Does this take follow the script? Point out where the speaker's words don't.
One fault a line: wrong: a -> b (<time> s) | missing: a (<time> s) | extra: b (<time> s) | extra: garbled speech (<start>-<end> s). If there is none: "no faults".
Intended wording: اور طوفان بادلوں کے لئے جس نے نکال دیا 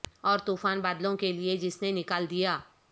no faults